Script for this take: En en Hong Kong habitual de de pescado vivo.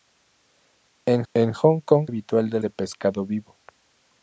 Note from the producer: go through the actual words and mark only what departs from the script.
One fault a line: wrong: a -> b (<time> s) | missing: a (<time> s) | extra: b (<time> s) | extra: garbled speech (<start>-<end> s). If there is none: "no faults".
no faults